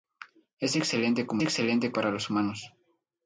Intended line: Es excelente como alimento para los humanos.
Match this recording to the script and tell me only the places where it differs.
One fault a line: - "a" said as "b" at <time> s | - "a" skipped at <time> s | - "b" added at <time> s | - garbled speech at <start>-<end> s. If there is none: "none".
- "alimento" said as "excelente" at 1.4 s